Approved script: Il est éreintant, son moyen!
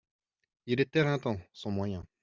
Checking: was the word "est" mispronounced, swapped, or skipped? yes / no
no